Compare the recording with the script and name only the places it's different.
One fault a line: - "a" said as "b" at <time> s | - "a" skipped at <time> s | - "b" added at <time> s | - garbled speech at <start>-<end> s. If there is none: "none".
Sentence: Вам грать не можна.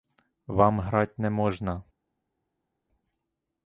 none